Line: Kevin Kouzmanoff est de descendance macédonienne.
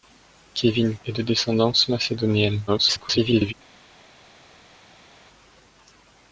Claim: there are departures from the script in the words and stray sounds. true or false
true